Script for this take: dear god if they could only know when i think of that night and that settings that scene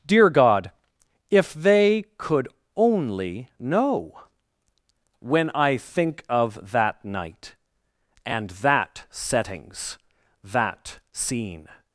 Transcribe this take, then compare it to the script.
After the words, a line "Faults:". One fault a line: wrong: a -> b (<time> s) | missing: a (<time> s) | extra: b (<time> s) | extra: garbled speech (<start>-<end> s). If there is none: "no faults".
dear god if they could only know when i think of that night and that settings that scene
Faults:
no faults